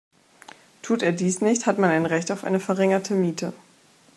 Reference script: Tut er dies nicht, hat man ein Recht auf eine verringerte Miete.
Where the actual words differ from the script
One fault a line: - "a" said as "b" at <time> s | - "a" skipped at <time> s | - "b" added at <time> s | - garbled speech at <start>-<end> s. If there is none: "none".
none